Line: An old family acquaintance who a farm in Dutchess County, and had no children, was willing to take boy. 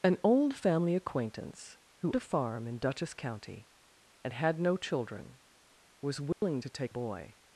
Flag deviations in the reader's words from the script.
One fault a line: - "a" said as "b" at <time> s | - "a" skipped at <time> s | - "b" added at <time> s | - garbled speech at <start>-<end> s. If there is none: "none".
none